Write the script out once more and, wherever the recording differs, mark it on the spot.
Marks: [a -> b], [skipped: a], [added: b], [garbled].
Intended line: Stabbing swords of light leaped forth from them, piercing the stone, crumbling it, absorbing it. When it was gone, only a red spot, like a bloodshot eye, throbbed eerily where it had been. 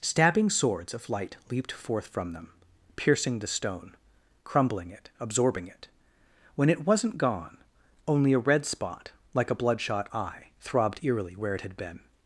Stabbing swords of light leaped forth from them, piercing the stone, crumbling it, absorbing it. When it [was -> wasn't] gone, only a red spot, like a bloodshot eye, throbbed eerily where it had been.